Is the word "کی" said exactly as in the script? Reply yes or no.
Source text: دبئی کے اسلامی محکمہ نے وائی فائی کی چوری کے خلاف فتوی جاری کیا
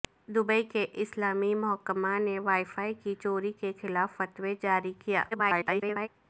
yes